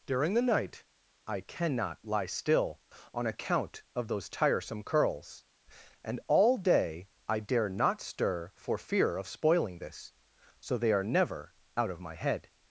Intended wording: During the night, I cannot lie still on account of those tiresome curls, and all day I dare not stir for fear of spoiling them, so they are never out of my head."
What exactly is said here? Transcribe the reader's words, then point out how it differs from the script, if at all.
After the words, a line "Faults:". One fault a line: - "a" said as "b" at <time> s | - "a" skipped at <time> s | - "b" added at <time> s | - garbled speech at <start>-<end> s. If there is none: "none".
During the night, I cannot lie still on account of those tiresome curls, and all day I dare not stir for fear of spoiling this, so they are never out of my head."
Faults:
- "them" said as "this" at 9.8 s